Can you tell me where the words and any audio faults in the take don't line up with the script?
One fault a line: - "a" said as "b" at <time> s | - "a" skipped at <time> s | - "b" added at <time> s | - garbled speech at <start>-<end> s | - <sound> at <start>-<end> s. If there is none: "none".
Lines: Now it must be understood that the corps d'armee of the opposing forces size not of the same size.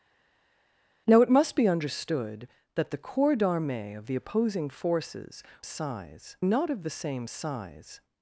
none